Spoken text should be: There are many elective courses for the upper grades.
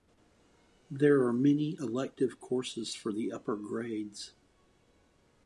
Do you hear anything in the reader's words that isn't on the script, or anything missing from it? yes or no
no